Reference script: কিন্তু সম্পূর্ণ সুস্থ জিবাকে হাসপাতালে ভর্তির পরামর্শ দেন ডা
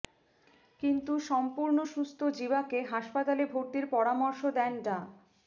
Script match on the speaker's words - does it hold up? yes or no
yes